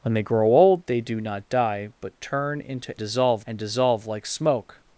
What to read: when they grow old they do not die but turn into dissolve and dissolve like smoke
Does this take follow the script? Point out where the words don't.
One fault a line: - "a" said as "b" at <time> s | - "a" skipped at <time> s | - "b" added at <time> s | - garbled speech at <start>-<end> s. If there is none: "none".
none